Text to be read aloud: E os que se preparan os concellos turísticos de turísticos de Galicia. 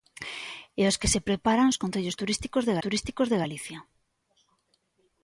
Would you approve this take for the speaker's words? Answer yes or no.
yes